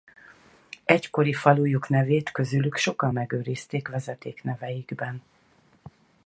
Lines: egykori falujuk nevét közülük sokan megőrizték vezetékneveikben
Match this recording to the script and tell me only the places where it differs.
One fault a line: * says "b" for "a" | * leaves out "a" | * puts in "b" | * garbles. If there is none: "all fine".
all fine